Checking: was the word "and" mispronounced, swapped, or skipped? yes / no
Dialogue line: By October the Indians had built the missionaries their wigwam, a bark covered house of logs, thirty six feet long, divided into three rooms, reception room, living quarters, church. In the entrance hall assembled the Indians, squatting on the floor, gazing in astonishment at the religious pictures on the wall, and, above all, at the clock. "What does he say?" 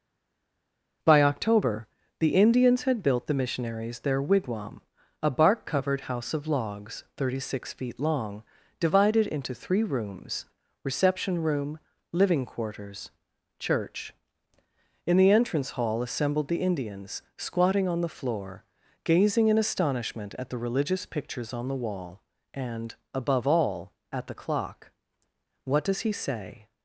no